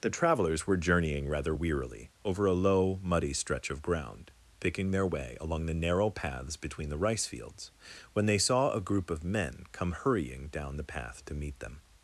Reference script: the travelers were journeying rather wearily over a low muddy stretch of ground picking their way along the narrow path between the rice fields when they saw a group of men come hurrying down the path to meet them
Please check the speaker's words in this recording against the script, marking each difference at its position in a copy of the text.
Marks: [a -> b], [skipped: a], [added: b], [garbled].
the travelers were journeying rather wearily over a low muddy stretch of ground picking their way along the narrow [path -> paths] between the rice fields when they saw a group of men come hurrying down the path to meet them